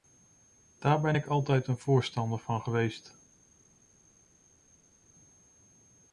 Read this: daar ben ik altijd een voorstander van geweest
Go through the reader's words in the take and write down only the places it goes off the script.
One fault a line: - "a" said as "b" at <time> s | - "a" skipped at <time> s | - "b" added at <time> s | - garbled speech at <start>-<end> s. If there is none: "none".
none